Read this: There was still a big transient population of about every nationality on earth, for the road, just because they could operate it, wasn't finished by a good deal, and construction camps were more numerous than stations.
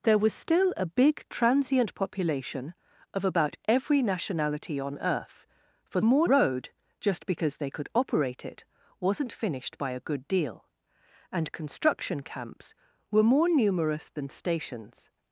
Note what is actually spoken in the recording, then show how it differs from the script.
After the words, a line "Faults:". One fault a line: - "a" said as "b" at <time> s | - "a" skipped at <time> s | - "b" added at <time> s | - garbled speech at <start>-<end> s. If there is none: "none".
There was still a big transient population of about every nationality on earth, for more road, just because they could operate it, wasn't finished by a good deal, and construction camps were more numerous than stations.
Faults:
- "the" said as "more" at 6.0 s